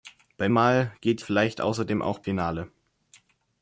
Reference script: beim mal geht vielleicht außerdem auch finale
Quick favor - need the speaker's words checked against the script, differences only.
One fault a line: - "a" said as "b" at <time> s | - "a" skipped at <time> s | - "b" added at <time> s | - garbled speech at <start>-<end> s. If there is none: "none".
none